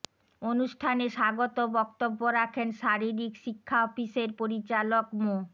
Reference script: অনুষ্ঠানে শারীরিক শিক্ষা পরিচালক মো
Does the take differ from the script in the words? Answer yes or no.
yes